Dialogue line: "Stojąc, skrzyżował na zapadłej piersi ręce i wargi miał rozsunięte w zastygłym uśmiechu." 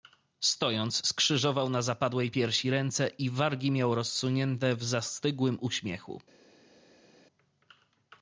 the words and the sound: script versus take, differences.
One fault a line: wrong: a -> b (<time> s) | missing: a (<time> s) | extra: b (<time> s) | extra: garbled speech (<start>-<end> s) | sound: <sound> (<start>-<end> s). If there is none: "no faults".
no faults